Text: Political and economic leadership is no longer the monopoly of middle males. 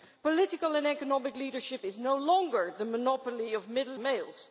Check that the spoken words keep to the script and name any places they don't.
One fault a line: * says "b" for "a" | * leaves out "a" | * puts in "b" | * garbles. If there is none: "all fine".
all fine